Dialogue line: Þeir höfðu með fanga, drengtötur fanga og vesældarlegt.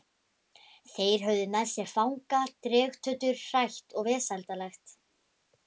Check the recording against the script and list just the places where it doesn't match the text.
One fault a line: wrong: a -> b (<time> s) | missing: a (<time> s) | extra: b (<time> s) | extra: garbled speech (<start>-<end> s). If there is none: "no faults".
extra: sér (1.7 s)
wrong: fanga -> hrætt (3.5 s)